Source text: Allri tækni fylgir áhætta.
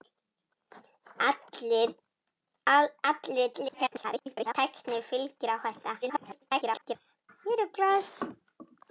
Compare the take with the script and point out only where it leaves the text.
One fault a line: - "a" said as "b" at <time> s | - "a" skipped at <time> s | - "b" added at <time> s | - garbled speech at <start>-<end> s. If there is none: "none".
- garbled speech at 3.5-4.5 s
- garbled speech at 6.0-7.0 s